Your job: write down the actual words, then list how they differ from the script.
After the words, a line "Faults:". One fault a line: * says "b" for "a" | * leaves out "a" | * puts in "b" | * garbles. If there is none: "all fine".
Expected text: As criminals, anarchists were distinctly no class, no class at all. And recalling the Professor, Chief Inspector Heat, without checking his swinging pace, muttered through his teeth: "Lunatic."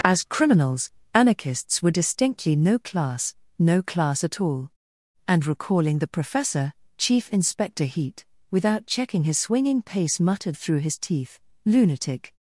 As criminals, anarchists were distinctly no class, no class at all. And recalling the Professor, Chief Inspector Heat, without checking his swinging pace, muttered through his teeth: "Lunatic."
Faults:
all fine